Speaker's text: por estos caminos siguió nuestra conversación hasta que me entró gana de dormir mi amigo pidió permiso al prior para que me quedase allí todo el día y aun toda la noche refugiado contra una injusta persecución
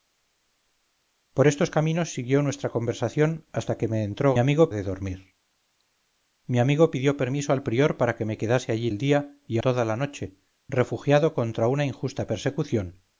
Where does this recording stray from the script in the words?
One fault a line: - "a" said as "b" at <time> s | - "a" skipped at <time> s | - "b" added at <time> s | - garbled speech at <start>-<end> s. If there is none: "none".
- "gana" said as "amigo" at 4.4 s
- "todo" skipped at 8.9 s
- "aun" skipped at 9.6 s